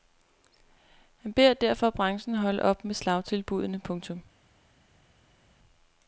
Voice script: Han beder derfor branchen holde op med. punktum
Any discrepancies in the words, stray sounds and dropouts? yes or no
yes